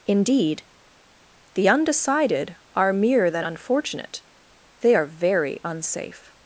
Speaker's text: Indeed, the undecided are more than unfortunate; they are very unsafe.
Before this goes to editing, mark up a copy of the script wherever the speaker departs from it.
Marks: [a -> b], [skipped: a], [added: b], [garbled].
Indeed, the undecided are [more -> mere] than unfortunate; they are very unsafe.